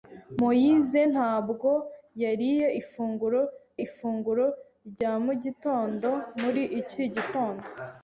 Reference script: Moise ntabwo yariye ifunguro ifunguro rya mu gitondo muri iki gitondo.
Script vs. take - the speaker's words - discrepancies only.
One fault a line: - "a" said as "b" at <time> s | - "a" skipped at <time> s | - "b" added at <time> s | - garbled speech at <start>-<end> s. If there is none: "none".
none